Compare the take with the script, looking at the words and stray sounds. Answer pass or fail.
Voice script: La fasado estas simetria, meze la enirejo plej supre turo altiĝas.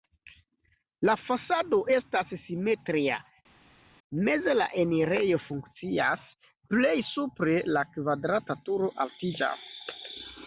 fail